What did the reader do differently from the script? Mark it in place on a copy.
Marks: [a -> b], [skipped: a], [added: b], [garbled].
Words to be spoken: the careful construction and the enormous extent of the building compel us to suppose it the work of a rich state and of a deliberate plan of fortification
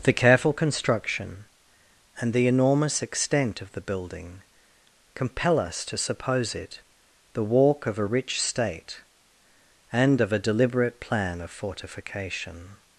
the careful construction and the enormous extent of the building compel us to suppose it the [work -> walk] of a rich state and of a deliberate plan of fortification